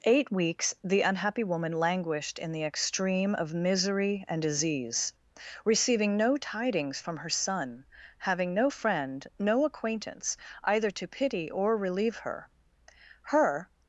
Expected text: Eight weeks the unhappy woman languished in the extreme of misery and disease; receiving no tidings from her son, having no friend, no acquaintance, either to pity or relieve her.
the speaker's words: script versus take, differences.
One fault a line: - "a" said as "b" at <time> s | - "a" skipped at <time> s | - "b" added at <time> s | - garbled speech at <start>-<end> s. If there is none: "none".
- "Her" added at 13.2 s